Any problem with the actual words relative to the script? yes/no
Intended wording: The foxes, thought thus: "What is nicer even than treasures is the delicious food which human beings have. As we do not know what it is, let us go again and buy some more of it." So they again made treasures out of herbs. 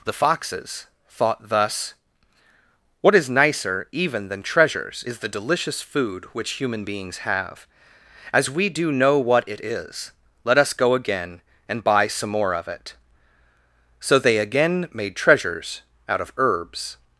yes